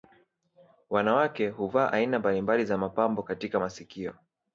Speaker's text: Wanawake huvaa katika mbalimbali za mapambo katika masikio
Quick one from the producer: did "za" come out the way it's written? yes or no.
yes